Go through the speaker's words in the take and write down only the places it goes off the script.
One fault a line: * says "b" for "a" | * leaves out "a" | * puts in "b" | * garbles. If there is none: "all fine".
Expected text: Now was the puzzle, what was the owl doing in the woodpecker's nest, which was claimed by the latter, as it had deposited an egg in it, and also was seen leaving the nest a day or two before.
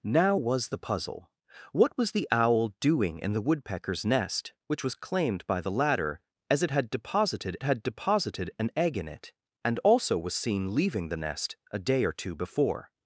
* puts in "had deposited"